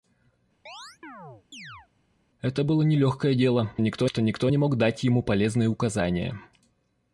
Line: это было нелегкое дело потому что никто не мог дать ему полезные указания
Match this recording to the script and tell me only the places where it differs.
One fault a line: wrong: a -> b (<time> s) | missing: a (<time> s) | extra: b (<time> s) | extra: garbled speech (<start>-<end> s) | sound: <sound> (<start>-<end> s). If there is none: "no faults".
sound: chirp (0.7-1.9 s)
wrong: потому -> никто (3.8 s)